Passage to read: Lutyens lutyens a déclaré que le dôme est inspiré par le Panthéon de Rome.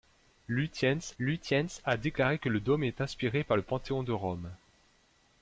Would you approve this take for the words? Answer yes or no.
yes